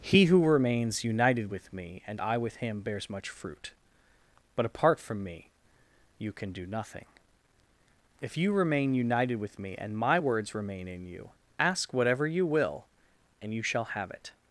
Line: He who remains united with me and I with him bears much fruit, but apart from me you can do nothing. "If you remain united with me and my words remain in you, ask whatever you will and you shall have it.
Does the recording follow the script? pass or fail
pass